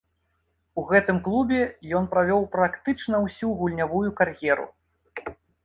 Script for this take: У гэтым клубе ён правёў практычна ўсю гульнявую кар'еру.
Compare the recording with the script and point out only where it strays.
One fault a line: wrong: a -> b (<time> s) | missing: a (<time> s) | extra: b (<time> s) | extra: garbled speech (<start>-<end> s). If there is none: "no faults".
no faults